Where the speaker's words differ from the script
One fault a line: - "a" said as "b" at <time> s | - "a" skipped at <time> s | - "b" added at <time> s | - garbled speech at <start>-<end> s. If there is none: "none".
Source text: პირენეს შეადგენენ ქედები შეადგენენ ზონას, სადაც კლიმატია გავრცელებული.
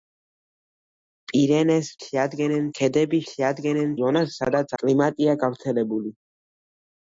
none